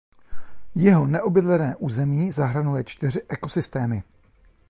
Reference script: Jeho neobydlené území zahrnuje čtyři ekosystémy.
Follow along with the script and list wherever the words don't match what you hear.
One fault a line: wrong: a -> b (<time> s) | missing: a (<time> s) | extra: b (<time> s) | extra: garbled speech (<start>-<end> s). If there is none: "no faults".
no faults